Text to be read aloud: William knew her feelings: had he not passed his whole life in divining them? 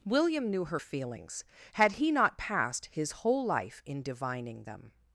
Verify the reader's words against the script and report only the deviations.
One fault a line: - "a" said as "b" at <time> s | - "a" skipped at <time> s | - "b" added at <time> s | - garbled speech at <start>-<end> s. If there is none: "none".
none